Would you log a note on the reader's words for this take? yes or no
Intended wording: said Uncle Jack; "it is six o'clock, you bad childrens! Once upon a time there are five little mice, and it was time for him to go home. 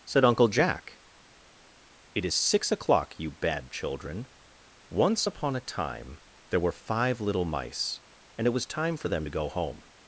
yes